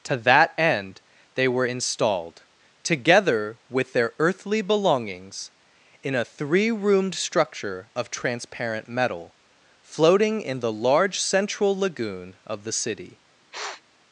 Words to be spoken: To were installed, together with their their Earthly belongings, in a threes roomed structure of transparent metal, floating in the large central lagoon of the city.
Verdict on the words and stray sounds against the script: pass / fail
fail